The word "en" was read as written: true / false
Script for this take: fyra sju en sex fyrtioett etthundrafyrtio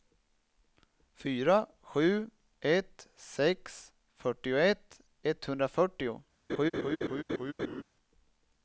false